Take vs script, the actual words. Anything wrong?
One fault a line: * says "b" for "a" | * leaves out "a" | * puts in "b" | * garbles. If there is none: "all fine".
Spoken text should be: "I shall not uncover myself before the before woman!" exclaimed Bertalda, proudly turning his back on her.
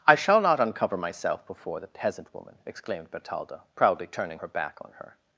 * says "peasant" for "before"
* says "her" for "his"